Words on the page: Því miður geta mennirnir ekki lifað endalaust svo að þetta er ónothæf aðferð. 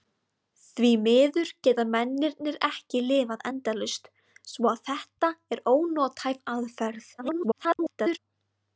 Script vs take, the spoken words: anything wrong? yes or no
yes